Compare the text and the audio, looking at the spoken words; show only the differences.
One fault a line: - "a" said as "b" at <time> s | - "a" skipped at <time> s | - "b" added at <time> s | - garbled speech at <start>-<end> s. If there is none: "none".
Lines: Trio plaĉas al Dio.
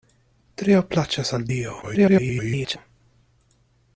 - garbled speech at 1.8-2.8 s